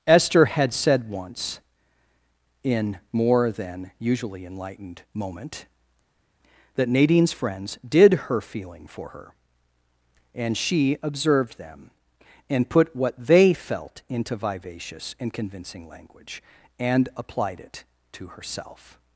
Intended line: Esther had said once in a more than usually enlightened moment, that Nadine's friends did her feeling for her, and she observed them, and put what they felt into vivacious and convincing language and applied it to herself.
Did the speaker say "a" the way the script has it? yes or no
no